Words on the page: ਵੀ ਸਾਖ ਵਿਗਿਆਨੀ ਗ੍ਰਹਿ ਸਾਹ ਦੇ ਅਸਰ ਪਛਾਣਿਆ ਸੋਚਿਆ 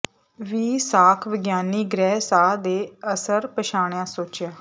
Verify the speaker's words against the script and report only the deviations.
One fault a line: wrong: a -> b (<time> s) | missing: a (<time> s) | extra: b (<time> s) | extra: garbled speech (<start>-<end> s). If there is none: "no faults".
no faults